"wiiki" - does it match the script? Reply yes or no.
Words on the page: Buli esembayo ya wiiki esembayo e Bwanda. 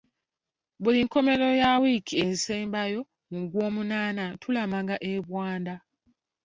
yes